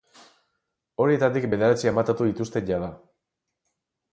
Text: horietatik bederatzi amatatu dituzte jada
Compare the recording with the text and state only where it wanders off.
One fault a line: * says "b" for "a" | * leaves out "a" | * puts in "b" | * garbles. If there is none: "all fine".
all fine